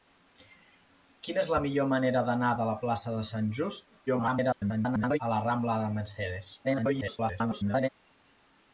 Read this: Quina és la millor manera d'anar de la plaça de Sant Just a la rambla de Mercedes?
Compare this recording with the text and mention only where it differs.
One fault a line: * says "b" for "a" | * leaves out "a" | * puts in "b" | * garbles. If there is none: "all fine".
* garbles
* garbles